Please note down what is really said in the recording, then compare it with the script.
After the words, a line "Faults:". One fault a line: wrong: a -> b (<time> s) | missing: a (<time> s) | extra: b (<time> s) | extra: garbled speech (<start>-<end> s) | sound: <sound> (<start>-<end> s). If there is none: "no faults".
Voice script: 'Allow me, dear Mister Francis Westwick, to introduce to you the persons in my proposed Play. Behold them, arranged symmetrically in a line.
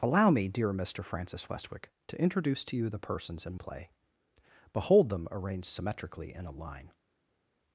'Allow me, dear Mister Francis Westwick, to introduce to you the persons in Play. Behold them, arranged symmetrically in a line.
Faults:
missing: my proposed (3.5 s)